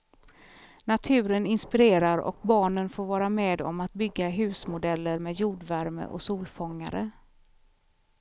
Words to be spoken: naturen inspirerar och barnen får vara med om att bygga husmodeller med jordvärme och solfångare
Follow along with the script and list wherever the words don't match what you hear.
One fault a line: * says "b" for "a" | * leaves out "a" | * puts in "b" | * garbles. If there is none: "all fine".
all fine